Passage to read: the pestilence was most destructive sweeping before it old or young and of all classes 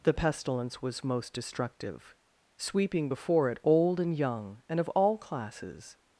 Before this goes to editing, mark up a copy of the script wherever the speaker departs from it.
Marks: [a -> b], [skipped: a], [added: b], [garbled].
the pestilence was most destructive sweeping before it old [or -> and] young and of all classes